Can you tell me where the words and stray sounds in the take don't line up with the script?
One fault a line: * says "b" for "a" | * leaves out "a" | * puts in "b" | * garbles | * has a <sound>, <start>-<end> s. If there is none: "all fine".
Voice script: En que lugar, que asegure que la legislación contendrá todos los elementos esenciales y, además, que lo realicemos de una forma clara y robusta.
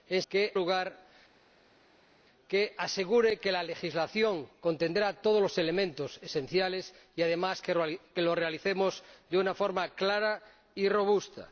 all fine